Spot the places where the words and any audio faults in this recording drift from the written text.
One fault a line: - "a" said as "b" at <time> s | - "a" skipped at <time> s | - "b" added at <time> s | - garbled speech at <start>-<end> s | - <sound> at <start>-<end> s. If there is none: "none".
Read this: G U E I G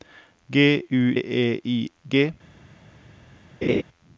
- laugh at 3.6-3.8 s